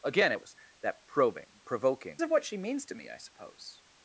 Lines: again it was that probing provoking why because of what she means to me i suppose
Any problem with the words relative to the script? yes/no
yes